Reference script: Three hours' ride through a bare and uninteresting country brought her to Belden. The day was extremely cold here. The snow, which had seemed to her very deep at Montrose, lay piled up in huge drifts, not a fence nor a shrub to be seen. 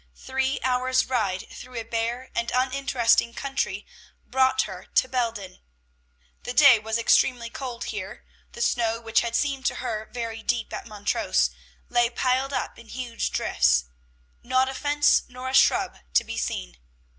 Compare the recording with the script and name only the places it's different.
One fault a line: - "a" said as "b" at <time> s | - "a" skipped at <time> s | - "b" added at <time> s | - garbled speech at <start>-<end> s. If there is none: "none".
none